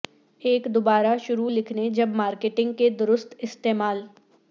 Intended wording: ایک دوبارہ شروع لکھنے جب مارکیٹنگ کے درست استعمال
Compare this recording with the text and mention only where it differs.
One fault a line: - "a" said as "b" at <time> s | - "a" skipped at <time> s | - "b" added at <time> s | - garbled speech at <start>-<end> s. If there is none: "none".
none